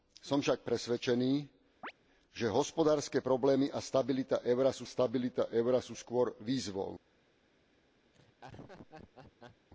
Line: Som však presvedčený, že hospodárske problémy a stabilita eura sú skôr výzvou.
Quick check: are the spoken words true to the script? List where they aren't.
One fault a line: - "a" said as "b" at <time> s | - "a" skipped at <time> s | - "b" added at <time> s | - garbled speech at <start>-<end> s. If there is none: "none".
- "stabilita eura sú" added at 4.8 s